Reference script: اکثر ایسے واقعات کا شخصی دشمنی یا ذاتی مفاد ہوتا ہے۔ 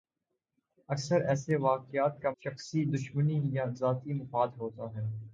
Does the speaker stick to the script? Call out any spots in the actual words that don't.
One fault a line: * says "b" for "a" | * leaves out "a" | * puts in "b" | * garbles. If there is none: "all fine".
all fine